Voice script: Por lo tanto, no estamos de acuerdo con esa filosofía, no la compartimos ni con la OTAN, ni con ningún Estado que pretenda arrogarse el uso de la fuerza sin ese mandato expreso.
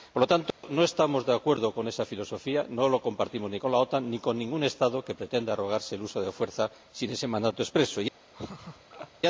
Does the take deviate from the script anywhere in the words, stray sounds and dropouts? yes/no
yes